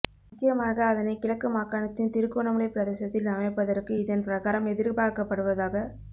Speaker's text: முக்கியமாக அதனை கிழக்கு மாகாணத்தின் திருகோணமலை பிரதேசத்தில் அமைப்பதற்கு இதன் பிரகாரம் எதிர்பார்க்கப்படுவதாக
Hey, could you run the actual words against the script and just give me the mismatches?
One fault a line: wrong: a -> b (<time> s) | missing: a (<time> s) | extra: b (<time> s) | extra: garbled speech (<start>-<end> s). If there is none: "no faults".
no faults